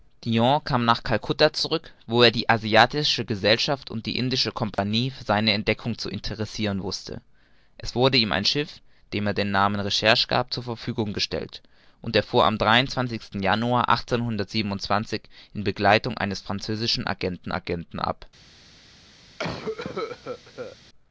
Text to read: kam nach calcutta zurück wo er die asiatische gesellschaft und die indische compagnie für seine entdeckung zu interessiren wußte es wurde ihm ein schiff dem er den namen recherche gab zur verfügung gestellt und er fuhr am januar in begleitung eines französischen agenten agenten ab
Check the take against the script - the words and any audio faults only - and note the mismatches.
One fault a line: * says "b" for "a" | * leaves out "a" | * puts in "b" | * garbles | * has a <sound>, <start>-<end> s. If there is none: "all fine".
* has a dropout, 4.7-4.8 s
* has a cough, 19.4-20.8 s